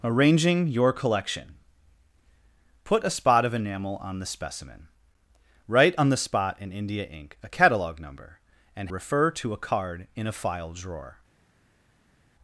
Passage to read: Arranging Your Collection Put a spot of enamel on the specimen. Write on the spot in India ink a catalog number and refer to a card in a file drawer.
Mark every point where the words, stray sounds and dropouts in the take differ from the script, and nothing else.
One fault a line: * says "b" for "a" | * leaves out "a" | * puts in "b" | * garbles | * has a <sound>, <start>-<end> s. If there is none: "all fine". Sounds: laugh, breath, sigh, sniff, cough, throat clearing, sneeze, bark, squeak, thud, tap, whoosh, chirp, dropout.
all fine